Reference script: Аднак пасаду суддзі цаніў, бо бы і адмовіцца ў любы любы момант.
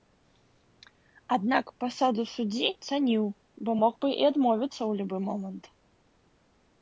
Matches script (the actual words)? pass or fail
fail